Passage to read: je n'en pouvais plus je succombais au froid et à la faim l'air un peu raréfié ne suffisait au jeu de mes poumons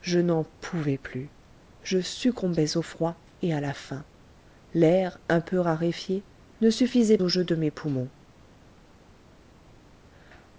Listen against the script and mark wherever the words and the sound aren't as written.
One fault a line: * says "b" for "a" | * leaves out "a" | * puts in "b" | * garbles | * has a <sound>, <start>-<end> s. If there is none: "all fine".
all fine